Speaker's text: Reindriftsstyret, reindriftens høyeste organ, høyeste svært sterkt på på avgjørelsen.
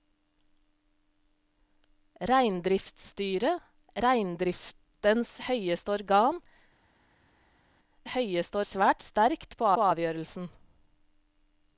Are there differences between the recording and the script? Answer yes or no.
no